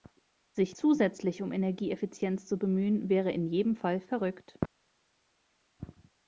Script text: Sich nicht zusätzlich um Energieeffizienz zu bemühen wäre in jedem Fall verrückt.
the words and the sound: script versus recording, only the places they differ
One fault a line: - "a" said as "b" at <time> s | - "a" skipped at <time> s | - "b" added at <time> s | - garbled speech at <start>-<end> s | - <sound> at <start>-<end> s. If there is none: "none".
- "nicht" skipped at 0.8 s